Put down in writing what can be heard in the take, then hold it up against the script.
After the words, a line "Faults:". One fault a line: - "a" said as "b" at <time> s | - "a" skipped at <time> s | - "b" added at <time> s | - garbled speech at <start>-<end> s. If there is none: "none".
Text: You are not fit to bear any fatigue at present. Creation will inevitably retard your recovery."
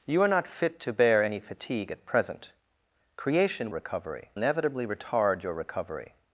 You are not fit to bear any fatigue at present. Creation recovery inevitably retard your recovery."
Faults:
- "will" said as "recovery" at 3.7 s